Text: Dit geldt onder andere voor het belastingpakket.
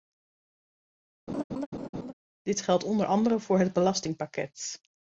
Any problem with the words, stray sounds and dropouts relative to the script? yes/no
yes